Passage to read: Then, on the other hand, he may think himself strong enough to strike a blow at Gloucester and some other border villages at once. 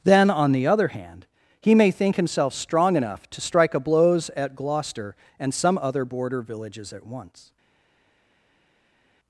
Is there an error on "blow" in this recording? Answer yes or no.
yes